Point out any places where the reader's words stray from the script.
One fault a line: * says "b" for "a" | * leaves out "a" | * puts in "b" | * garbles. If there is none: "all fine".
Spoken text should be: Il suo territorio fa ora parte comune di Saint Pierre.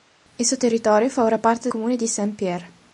all fine